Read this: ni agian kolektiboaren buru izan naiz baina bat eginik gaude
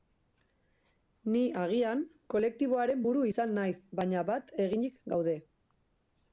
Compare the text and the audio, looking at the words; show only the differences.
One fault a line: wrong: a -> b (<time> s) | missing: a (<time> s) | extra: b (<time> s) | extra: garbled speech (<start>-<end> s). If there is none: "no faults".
no faults